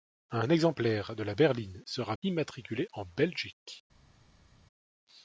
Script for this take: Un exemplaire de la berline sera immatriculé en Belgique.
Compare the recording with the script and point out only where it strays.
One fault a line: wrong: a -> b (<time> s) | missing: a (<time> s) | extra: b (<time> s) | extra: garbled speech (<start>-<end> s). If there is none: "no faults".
no faults